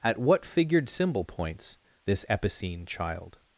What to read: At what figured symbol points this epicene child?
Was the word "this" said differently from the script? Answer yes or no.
no